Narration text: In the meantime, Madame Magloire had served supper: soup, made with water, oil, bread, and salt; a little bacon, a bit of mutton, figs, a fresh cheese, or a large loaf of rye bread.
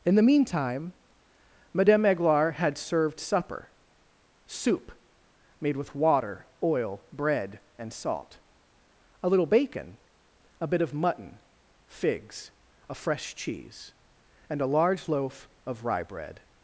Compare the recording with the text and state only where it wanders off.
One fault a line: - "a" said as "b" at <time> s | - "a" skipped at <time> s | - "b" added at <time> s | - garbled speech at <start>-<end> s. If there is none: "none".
- "or" said as "and" at 14.5 s